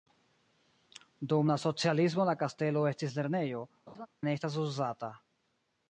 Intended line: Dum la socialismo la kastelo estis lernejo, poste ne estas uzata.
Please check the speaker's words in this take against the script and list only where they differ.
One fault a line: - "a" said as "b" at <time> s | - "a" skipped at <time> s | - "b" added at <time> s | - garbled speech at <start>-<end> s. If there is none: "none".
- "poste" skipped at 3.6 s